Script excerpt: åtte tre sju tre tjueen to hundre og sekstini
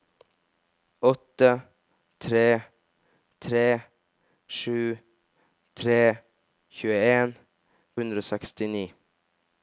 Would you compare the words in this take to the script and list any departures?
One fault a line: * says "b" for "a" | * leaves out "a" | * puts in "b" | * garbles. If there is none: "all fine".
* puts in "tre"
* leaves out "to"